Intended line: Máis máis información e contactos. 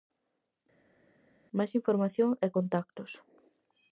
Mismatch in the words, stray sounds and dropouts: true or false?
true